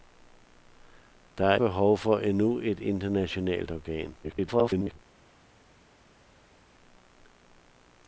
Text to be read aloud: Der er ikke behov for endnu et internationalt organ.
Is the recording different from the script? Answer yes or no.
yes